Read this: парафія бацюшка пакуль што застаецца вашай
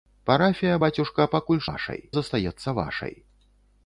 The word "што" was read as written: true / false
false